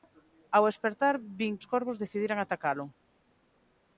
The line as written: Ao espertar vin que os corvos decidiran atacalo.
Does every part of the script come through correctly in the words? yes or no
no